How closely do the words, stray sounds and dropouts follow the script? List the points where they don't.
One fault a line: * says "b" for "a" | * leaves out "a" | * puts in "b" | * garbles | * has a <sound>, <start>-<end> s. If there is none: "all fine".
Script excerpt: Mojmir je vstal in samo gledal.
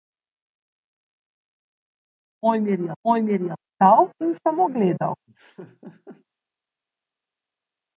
* puts in "mojmir je"
* has a laugh, 5.3-6.3 s